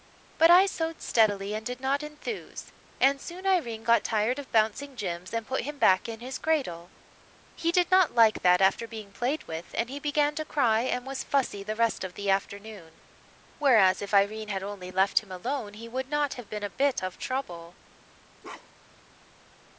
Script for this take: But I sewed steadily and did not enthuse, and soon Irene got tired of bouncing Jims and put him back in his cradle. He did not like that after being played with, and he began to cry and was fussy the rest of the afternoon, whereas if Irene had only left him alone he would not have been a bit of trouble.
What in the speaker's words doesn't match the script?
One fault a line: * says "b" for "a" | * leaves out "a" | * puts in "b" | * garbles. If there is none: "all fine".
all fine